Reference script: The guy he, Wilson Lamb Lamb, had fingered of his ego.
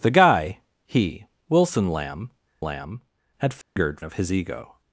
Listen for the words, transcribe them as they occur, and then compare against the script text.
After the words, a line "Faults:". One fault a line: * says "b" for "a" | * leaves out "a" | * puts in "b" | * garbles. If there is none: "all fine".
The guy he, Wilson Lamb Lamb, had fingered of his ego.
Faults:
all fine